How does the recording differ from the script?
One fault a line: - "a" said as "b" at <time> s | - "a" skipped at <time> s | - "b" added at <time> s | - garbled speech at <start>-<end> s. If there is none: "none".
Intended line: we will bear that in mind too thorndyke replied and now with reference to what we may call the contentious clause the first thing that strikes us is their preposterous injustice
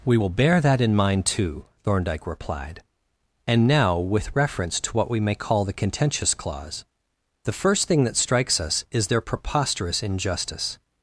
none